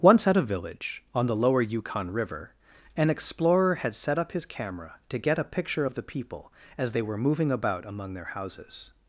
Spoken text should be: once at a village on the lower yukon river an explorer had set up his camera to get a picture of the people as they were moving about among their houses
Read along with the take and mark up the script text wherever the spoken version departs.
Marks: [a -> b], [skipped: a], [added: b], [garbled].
once at a village on the lower yukon river an explorer had set up his camera to get a picture of the people as they were moving about among their houses